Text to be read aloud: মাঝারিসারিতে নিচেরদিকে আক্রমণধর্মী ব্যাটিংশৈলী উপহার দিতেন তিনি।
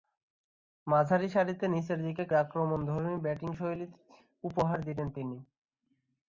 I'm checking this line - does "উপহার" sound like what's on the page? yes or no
yes